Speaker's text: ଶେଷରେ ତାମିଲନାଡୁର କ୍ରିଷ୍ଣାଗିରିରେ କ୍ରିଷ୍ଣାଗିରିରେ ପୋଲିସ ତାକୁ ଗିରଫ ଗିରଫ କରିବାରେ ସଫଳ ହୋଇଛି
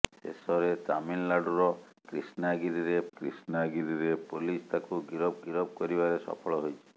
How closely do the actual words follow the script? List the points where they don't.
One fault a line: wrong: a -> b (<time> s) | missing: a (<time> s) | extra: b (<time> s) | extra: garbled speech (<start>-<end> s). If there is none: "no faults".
no faults